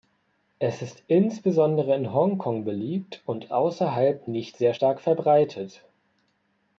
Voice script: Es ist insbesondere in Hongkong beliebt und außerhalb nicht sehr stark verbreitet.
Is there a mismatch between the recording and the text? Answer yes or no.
no